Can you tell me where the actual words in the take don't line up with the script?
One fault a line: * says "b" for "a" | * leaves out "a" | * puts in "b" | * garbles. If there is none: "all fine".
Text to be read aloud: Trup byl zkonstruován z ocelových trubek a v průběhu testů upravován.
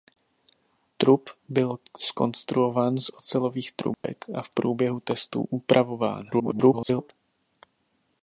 * garbles